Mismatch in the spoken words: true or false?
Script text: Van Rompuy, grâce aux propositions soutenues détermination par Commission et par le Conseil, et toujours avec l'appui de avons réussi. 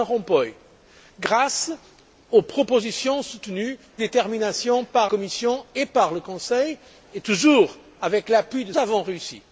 false